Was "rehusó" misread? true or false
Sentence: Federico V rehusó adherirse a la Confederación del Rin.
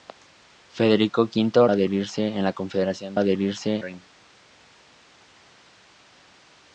true